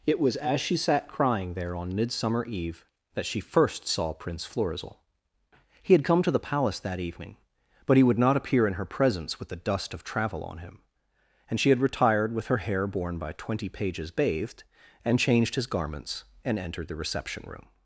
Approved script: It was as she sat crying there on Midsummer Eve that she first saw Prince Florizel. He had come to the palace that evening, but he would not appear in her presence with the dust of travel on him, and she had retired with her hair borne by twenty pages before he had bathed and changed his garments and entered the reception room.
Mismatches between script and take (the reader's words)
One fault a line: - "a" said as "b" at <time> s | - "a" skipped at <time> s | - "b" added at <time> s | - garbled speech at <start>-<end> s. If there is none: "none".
- "before he had" skipped at 14.1 s